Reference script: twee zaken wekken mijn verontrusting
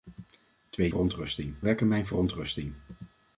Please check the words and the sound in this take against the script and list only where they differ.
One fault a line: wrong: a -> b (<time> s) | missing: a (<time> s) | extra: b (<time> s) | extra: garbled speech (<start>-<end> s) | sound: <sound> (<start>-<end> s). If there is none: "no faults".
wrong: zaken -> verontrusting (0.9 s)